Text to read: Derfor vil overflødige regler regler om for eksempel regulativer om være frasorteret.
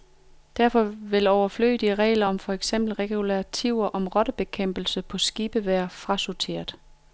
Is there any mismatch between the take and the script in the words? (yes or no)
yes